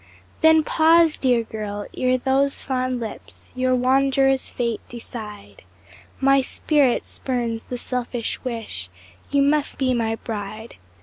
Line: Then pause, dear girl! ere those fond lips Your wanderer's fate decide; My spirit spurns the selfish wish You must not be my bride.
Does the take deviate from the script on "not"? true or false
true